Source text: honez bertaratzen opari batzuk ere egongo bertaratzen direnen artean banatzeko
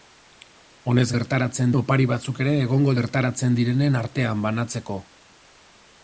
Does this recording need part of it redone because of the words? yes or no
no